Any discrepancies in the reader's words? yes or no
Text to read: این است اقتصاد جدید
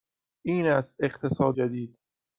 no